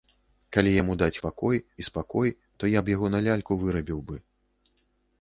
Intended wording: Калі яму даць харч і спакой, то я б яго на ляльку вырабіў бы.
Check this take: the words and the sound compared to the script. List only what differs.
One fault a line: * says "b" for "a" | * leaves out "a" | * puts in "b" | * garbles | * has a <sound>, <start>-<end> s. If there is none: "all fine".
* says "спакой" for "харч"